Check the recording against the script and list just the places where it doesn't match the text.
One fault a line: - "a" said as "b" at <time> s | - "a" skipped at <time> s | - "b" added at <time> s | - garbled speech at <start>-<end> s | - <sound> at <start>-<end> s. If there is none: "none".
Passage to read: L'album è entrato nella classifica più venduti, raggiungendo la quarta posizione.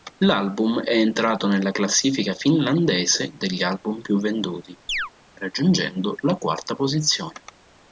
- "finlandese degli album" added at 2.3 s
- chirp at 4.9-5.1 s